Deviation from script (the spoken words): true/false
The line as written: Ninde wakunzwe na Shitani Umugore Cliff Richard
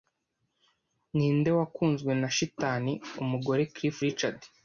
false